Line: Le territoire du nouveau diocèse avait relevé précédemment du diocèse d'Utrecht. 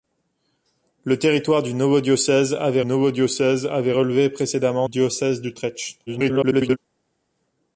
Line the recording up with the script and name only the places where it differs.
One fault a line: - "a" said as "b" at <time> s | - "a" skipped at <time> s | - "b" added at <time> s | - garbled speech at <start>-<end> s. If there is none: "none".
- "nouveau diocèse avait" added at 2.8 s
- "du" skipped at 4.9 s
- garbled speech at 6.1-6.8 s